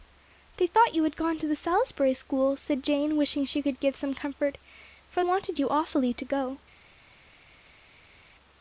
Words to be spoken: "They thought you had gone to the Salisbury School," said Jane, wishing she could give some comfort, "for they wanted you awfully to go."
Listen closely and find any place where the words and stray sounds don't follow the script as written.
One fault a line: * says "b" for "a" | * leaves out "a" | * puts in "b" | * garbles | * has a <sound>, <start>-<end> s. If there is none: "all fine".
* leaves out "they"